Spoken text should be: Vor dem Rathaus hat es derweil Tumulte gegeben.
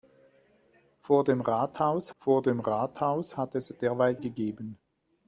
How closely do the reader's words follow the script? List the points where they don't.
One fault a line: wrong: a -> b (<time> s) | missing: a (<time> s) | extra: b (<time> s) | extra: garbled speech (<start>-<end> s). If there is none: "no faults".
extra: vor dem Rathaus (2.2 s)
missing: Tumulte (4.2 s)